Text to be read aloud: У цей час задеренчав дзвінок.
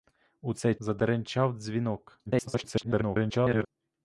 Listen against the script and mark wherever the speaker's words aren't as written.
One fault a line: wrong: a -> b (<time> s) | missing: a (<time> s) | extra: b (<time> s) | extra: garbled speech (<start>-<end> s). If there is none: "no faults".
missing: час (0.8 s)
extra: garbled speech (2.3-3.7 s)